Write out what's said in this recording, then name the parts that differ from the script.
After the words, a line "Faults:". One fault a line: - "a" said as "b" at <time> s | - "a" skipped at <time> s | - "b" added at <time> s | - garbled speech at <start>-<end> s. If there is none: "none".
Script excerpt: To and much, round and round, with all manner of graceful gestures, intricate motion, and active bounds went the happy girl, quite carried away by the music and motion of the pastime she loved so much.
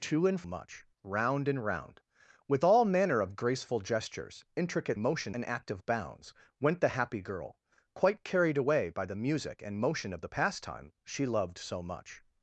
To and much, round and round, with all manner of graceful gestures, intricate motion, and active bounds went the happy girl, quite carried away by the music and motion of the pastime she loved so much.
Faults:
none